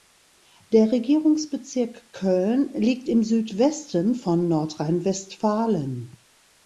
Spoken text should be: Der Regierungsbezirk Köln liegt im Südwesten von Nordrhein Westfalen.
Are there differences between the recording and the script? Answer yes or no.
no